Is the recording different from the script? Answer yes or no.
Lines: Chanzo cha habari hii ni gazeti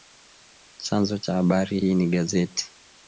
no